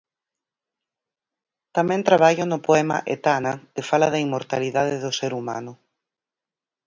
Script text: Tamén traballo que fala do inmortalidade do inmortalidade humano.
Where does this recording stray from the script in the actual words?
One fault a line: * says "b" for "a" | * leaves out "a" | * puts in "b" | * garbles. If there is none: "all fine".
* puts in "no poema Etana"
* says "da" for "do"
* says "ser" for "inmortalidade"